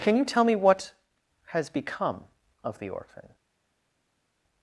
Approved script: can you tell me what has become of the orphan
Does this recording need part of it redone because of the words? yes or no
no